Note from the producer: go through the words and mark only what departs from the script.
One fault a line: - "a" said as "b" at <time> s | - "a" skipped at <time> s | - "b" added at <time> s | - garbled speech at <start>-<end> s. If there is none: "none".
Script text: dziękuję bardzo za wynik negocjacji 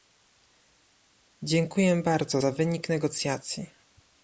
none